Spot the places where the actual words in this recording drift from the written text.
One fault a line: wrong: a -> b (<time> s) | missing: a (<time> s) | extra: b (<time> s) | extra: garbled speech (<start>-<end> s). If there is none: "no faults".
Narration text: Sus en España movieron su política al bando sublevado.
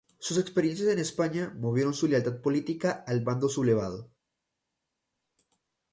extra: experiencias (0.4 s)
extra: lealtad (2.1 s)